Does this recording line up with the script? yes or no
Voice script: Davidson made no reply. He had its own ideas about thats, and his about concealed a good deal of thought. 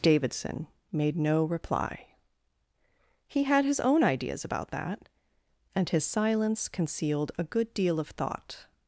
no